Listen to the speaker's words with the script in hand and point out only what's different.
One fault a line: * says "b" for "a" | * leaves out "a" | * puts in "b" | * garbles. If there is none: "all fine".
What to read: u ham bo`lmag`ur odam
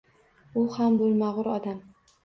all fine